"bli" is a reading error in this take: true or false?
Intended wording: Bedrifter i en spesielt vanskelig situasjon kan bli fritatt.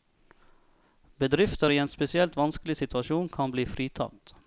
false